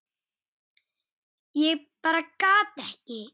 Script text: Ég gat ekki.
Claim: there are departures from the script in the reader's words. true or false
true